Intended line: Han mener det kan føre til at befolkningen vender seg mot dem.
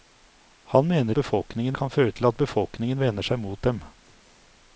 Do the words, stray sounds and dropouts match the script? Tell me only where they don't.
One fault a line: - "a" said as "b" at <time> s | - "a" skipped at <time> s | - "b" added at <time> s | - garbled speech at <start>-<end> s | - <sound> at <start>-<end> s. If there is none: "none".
- "det" said as "befolkningen" at 1.2 s